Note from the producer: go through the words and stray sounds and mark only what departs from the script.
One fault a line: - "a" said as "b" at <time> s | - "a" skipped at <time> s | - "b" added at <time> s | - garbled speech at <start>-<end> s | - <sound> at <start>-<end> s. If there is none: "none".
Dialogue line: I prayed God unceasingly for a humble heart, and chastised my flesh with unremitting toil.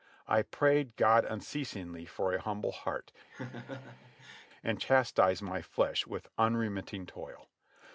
- laugh at 3.3-4.5 s